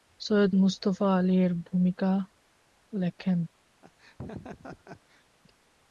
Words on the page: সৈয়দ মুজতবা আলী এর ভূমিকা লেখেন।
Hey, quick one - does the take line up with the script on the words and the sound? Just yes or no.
no